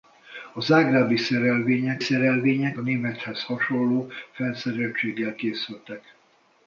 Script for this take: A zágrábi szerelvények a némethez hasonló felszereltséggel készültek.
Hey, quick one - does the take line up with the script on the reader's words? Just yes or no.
no